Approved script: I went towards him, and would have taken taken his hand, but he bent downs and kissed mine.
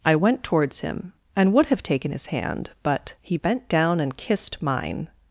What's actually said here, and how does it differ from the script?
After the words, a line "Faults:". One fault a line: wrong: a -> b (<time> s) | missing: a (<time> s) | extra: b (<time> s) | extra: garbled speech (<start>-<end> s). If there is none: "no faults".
I went towards him, and would have taken his hand, but he bent down and kissed mine.
Faults:
missing: taken (2.1 s)
wrong: downs -> down (3.7 s)